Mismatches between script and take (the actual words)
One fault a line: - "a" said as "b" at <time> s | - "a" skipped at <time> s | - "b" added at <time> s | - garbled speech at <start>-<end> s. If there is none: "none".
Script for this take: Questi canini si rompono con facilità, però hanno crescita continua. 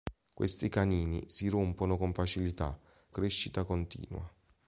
- "però hanno" skipped at 2.8 s